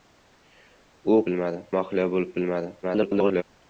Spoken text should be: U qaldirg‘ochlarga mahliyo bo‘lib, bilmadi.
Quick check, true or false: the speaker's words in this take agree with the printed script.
false